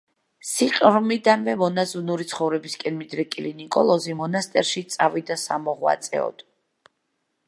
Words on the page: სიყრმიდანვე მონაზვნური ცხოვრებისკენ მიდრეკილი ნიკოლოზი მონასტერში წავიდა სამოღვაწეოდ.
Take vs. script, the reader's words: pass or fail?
pass